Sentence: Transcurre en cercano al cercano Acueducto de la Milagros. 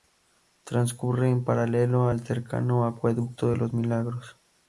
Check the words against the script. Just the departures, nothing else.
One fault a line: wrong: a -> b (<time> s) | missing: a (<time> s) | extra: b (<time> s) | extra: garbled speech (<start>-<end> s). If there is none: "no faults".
wrong: cercano -> paralelo (1.4 s)
wrong: la -> los (3.6 s)